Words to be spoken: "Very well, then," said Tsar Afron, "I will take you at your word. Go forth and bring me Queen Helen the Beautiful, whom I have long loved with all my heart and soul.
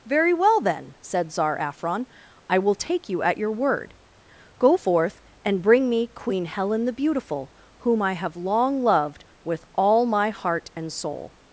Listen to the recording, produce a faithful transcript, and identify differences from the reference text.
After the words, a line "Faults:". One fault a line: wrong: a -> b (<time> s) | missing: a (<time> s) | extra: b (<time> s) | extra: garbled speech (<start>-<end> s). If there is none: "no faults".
"Very well, then," said Tsar Afron, "I will take you at your word. Go forth and bring me Queen Helen the Beautiful, whom I have long loved with all my heart and soul.
Faults:
no faults